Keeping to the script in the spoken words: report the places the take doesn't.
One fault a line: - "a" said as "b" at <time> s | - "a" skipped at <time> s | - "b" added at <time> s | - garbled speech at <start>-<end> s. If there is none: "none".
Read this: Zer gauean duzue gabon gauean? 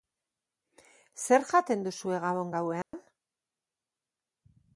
- "gauean" said as "jaten" at 1.5 s